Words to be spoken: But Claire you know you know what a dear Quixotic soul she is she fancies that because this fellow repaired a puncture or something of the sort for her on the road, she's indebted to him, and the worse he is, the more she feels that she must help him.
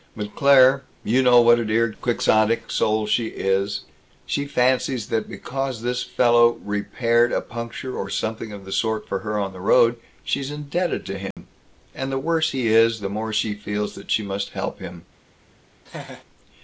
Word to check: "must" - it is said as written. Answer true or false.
true